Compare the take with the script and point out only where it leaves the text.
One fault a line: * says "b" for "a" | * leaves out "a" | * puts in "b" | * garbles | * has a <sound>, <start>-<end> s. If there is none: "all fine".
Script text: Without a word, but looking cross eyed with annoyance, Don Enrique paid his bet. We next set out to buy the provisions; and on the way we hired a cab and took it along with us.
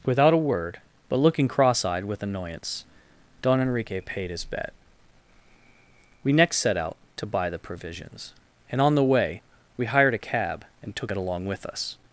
all fine